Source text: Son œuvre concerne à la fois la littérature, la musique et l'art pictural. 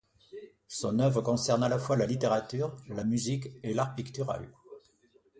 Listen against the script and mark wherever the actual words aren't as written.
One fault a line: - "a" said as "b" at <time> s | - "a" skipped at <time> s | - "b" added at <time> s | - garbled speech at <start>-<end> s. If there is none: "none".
none